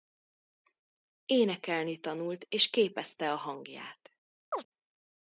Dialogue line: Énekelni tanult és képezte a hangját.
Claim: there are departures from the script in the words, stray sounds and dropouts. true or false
true